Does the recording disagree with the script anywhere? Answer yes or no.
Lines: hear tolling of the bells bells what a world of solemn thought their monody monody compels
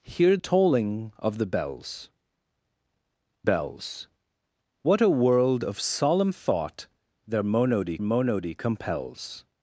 no